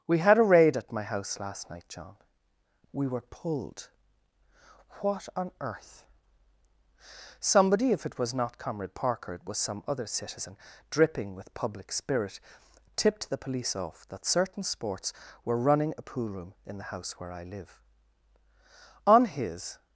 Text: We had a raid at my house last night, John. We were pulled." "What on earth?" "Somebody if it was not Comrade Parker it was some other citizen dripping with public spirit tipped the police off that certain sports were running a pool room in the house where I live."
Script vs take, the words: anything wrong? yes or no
yes